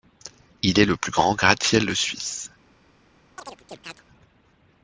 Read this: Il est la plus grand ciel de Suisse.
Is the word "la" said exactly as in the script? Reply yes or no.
no